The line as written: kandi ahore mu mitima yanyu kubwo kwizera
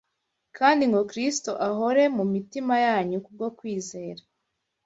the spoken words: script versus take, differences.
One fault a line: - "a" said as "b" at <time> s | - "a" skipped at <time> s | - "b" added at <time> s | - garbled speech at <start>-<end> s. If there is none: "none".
- "ngo kristo" added at 0.9 s